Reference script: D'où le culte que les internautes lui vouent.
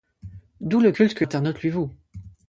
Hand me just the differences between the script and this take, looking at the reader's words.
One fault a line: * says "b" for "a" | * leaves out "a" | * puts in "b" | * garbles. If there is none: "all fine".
* leaves out "les"